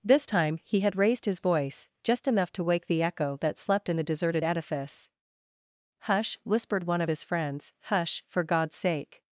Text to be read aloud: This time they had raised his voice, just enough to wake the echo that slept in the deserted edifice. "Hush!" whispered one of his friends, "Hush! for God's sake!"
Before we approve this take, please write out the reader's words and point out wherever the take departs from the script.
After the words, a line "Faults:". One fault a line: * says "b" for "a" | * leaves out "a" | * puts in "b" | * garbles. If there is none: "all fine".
This time he had raised his voice, just enough to wake the echo that slept in the deserted edifice. "Hush!" whispered one of his friends, "Hush! for God's sake!"
Faults:
* says "he" for "they"